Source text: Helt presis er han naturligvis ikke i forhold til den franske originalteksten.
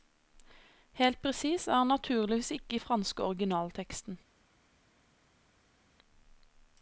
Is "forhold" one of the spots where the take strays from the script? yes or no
yes